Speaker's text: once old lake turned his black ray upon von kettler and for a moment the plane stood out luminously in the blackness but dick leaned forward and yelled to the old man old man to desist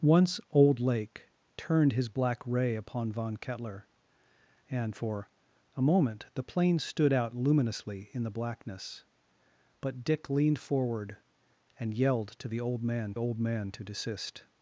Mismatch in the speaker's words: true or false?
false